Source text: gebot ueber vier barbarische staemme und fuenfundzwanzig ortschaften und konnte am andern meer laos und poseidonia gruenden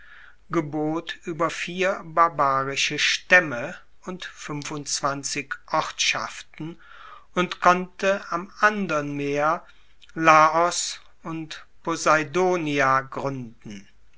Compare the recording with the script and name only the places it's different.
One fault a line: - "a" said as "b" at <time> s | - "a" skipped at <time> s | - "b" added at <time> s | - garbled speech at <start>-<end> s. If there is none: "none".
none